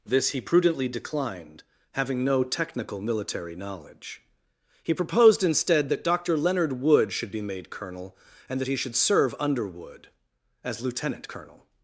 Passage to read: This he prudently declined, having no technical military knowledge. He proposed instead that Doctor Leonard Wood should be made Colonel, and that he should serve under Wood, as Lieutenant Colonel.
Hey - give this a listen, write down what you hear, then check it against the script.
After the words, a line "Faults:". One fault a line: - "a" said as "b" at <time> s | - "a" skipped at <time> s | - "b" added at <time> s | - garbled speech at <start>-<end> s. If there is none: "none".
This he prudently declined, having no technical military knowledge. He proposed instead that Doctor Leonard Wood should be made Colonel, and that he should serve under Wood, as Lieutenant Colonel.
Faults:
none